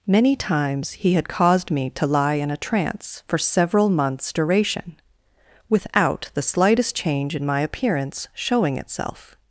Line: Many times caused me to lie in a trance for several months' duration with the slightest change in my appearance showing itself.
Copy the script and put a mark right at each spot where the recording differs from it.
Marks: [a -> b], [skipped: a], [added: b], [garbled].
Many times [added: he had] caused me to lie in a trance for several months' duration [with -> without] the slightest change in my appearance showing itself.